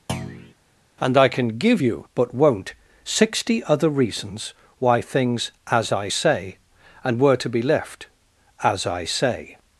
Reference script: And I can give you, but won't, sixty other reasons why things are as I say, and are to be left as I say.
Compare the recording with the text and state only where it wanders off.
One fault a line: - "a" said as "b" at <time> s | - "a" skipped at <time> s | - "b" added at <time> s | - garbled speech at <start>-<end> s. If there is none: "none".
- "are" skipped at 5.5 s
- "are" said as "were" at 7.2 s